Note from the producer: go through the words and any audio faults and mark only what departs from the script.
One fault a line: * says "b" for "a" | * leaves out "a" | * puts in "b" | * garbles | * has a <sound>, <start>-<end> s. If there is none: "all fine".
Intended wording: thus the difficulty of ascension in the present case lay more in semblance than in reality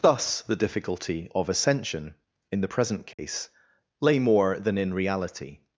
* has a dropout, 3.1-3.2 s
* leaves out "in semblance"